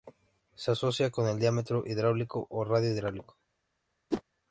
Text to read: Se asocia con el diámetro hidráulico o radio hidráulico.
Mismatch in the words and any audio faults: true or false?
true